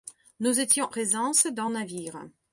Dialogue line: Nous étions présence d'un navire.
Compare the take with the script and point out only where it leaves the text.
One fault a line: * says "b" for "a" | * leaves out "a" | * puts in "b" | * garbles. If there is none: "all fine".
all fine